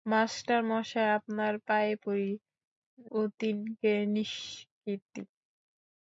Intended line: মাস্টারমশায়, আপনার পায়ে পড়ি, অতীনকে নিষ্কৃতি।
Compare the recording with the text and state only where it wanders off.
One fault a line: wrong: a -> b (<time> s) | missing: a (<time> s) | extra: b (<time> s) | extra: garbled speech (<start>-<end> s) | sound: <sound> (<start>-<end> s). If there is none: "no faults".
no faults